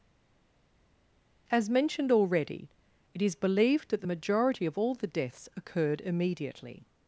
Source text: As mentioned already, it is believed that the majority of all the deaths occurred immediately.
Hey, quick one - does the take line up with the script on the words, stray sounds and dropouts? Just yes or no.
yes